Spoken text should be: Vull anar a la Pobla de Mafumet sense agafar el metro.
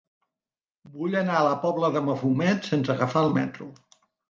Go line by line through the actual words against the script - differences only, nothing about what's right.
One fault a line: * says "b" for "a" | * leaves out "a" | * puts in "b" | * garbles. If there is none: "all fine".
all fine